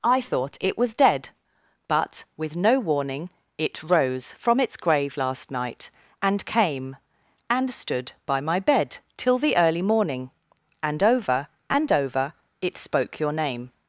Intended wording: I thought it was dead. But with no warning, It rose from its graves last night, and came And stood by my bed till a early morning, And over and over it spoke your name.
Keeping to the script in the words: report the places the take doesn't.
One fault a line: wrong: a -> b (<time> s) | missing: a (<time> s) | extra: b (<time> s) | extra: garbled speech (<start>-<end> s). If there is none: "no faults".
wrong: graves -> grave (4.8 s)
wrong: a -> the (9.4 s)